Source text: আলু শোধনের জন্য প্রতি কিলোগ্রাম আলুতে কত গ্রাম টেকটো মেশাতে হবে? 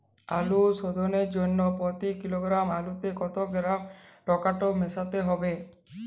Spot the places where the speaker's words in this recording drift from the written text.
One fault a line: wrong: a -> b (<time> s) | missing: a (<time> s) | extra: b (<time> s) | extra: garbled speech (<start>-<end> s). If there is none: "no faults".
no faults